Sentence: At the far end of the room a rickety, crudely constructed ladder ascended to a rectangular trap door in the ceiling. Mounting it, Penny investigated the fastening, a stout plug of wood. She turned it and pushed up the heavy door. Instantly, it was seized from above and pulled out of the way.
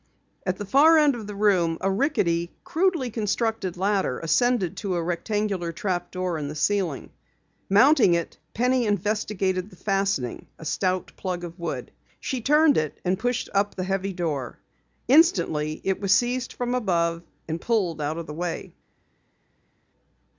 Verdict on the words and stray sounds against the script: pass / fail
pass